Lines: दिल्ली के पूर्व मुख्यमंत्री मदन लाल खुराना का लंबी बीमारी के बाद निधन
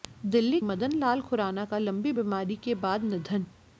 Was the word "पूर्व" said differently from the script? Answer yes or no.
yes